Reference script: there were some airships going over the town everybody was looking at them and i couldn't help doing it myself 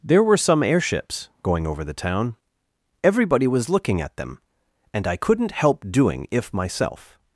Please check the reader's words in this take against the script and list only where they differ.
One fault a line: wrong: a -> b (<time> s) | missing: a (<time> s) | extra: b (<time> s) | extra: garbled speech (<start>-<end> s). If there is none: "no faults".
wrong: it -> if (6.3 s)